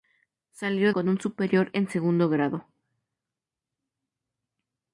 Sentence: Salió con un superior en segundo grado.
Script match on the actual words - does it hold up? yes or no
yes